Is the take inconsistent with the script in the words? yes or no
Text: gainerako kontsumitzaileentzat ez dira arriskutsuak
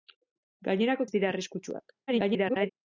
yes